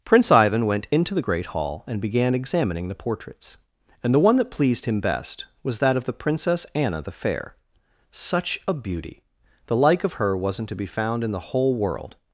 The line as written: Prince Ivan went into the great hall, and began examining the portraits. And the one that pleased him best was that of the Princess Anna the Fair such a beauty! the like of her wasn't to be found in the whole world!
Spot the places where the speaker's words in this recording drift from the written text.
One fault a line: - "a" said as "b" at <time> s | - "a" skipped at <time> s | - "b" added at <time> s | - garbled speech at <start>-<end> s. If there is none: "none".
none